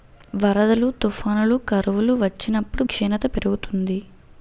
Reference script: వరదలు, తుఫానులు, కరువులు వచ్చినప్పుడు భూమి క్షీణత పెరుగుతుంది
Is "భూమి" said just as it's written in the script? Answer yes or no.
no